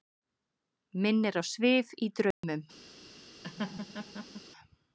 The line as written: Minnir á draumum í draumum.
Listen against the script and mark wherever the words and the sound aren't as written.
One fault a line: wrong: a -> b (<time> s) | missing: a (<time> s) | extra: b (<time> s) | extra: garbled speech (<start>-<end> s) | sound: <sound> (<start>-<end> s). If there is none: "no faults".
wrong: draumum -> svif (1.5 s)
sound: dropout (2.3-2.4 s)
sound: laugh (3.4-4.4 s)